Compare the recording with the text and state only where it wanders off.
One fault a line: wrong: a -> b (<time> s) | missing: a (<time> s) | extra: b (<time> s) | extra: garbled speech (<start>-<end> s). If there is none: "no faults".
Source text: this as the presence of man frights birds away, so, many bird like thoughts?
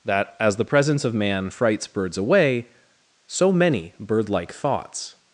wrong: this -> that (0.1 s)